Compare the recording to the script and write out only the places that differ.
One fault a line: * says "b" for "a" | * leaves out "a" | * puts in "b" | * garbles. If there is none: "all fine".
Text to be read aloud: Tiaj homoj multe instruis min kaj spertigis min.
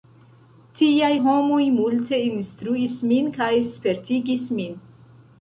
all fine